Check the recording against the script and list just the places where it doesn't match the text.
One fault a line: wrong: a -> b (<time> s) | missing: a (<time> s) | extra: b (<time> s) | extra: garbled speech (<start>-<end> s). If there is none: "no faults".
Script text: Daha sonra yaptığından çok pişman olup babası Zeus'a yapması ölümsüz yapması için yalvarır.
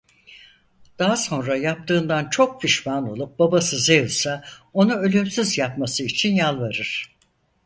wrong: yapması -> onu (4.7 s)